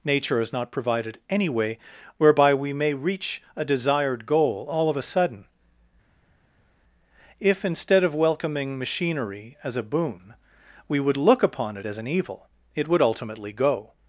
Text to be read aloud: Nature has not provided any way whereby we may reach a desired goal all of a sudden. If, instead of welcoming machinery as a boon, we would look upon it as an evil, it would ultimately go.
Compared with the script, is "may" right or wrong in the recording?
right